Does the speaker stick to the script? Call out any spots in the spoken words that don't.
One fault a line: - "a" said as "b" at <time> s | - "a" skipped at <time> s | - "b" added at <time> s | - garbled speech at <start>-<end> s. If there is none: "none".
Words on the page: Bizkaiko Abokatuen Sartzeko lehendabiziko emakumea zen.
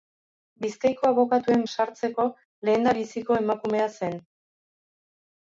none